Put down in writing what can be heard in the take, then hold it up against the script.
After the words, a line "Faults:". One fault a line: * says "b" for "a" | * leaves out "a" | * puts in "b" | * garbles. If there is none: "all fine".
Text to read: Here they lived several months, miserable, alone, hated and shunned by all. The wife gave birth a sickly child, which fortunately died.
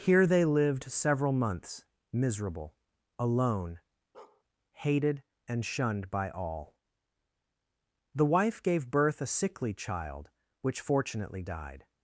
Here they lived several months, miserable, alone, hated and shunned by all. The wife gave birth a sickly child, which fortunately died.
Faults:
all fine